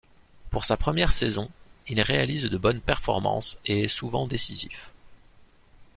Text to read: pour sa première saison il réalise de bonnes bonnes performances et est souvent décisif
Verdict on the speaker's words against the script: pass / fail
fail